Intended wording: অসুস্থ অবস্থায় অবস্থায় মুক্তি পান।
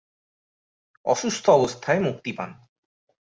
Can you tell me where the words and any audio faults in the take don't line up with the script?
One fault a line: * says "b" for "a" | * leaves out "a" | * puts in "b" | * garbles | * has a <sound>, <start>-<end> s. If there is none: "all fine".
* leaves out "অবস্থায়"